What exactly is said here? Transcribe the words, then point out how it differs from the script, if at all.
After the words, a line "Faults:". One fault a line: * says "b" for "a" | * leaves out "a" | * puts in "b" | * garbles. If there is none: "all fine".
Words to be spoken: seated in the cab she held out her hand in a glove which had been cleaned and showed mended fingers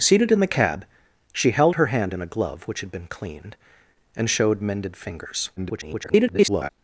seated in the cab she held her hand in a glove which had been cleaned and showed mended fingers [garbled]
Faults:
* leaves out "out"
* garbles